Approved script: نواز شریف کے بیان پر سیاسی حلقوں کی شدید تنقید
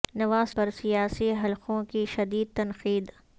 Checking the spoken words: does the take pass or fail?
fail